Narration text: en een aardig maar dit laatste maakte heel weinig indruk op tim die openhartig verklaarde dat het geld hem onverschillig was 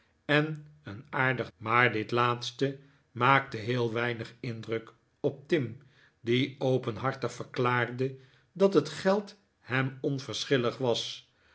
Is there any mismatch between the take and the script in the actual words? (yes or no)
no